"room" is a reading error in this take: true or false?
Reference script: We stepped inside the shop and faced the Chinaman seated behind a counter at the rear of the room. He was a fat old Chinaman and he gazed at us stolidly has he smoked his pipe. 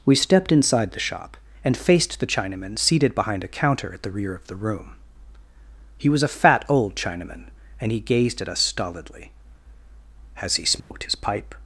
false